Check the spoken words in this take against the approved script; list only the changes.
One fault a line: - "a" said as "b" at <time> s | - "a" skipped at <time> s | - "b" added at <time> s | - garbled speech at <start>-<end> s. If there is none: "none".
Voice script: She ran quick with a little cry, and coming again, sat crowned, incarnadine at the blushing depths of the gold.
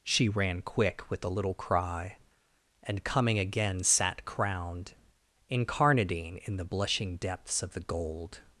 - "at" said as "in" at 6.5 s